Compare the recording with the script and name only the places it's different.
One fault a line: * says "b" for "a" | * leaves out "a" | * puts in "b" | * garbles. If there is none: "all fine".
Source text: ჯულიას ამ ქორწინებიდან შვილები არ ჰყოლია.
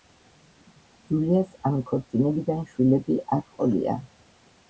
all fine